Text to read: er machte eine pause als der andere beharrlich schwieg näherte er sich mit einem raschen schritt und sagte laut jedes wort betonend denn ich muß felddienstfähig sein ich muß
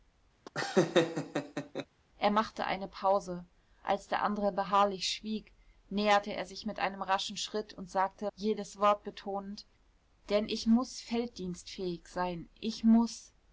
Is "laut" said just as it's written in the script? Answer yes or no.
no